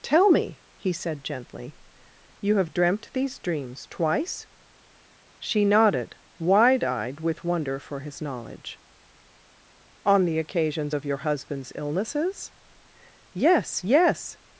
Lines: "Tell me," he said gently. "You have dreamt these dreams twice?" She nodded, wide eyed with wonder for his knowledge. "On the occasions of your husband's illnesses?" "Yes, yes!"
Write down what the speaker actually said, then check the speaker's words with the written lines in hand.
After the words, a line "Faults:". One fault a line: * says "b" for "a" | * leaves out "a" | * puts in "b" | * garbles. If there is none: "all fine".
"Tell me," he said gently. "You have dreamt these dreams twice?" She nodded, wide eyed with wonder for his knowledge. "On the occasions of your husband's illnesses?" "Yes, yes!"
Faults:
all fine